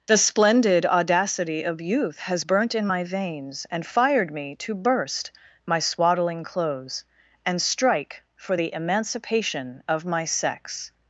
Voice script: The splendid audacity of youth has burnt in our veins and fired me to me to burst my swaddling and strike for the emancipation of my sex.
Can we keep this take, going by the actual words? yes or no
no